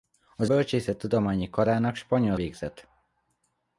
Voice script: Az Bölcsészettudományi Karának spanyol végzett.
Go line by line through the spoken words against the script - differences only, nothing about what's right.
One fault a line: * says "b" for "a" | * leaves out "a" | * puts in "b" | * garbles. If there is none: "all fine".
all fine